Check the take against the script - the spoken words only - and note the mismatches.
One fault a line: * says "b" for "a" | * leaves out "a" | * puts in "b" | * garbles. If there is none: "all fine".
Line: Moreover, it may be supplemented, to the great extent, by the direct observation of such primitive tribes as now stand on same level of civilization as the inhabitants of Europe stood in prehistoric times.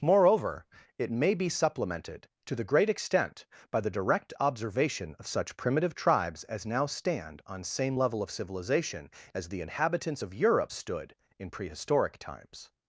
all fine